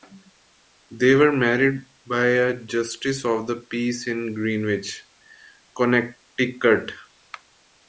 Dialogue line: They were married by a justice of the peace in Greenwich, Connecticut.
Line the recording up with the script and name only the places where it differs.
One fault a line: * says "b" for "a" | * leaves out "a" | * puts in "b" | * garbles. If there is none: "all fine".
all fine